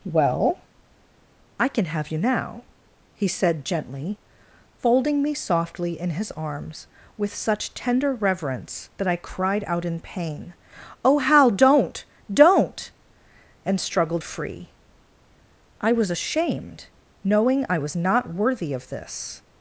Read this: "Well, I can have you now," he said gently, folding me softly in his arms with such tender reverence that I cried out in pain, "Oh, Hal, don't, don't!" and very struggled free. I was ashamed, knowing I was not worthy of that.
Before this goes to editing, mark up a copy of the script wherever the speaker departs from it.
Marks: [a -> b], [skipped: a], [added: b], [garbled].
"Well, I can have you now," he said gently, folding me softly in his arms with such tender reverence that I cried out in pain, "Oh, Hal, don't, don't!" and [skipped: very] struggled free. I was ashamed, knowing I was not worthy of [that. -> this]